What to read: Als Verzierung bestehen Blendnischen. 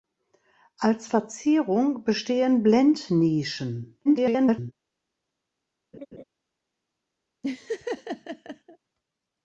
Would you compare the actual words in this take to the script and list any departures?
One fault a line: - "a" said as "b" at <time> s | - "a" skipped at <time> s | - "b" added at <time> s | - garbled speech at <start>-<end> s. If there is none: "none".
- garbled speech at 4.0-4.7 s